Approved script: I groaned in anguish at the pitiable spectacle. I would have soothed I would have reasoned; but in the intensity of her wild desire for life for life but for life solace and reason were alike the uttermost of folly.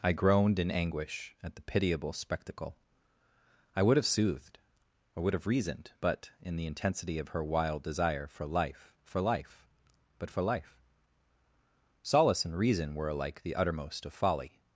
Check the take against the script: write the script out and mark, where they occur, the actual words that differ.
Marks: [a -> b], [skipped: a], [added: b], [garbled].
I groaned in anguish at the pitiable spectacle. I would have soothed I would have reasoned; but in the intensity of her wild desire for life for life but for life solace and reason were alike the uttermost of folly.